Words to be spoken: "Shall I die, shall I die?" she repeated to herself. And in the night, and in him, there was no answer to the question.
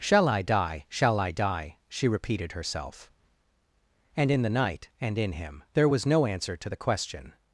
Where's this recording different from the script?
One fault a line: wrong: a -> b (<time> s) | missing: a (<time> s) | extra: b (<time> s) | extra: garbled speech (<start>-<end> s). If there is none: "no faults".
missing: to (2.5 s)